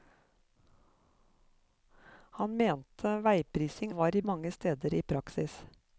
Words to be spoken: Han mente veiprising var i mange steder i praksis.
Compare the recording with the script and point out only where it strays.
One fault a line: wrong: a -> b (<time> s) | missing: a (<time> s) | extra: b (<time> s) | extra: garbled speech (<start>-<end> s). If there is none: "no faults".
no faults